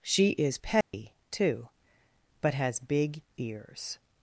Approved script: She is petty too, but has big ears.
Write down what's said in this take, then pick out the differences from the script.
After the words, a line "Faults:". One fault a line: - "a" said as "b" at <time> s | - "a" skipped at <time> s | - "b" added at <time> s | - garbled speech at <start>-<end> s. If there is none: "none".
She is petty too, but has big ears.
Faults:
none